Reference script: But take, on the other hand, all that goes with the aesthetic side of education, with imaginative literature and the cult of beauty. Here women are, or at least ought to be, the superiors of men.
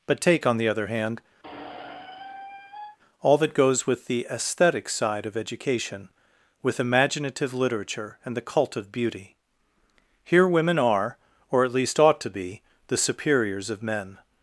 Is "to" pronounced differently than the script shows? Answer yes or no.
no